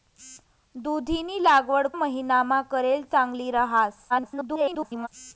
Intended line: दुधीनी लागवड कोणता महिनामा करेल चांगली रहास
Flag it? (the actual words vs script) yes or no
yes